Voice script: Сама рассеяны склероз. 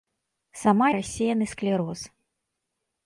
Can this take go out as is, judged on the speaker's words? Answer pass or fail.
pass